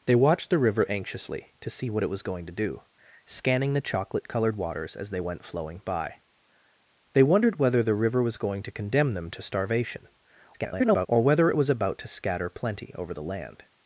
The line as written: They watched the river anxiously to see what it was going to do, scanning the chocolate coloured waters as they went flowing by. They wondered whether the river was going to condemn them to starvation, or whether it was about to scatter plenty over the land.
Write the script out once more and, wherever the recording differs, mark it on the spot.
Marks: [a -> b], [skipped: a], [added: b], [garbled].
They watched the river anxiously to see what it was going to do, scanning the chocolate coloured waters as they went flowing by. They wondered whether the river was going to condemn them to starvation, [garbled] or whether it was about to scatter plenty over the land.